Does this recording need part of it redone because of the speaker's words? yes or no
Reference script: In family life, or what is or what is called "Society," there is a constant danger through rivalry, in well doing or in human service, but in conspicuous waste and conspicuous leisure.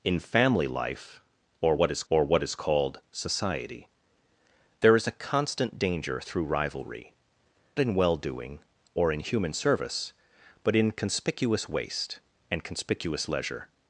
no